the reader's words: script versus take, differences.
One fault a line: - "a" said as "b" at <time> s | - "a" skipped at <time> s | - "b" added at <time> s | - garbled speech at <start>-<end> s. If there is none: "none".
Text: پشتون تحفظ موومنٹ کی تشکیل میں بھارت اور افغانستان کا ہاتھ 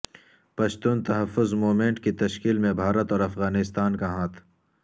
none